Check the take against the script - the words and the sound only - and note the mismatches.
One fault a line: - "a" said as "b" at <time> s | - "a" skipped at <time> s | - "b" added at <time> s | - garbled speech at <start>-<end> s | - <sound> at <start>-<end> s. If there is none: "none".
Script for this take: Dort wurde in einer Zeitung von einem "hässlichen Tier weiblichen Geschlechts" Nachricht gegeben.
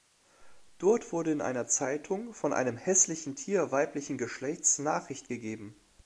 none